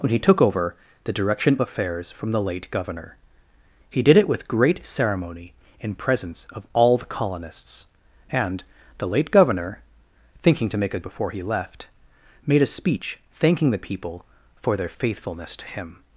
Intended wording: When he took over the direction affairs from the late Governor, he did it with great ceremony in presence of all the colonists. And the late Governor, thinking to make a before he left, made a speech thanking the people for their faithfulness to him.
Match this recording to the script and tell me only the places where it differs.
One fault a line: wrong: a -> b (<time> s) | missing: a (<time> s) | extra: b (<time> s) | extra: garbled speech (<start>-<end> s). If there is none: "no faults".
no faults